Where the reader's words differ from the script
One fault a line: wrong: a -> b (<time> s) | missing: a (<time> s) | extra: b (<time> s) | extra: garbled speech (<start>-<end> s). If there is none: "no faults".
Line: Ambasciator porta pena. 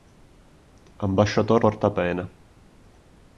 no faults